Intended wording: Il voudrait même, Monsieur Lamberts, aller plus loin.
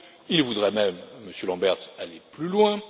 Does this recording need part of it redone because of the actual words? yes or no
no